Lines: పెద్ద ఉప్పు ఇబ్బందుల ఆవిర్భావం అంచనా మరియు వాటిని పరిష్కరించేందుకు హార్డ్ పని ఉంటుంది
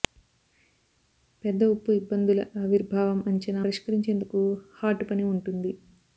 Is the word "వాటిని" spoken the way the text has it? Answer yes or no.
no